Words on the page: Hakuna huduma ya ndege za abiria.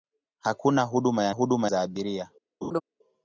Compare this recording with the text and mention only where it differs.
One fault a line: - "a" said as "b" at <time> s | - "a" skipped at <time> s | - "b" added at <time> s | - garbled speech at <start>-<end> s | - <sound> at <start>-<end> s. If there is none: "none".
- "ndege" said as "huduma" at 1.3 s
- laugh at 2.6-2.8 s